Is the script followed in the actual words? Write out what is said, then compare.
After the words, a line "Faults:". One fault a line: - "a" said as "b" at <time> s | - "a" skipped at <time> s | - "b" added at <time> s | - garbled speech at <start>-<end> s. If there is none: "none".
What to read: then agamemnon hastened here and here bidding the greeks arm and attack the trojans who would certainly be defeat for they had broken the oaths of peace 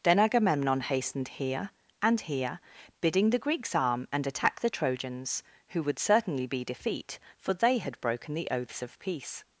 then agamemnon hastened here and here bidding the greeks arm and attack the trojans who would certainly be defeat for they had broken the oaths of peace
Faults:
none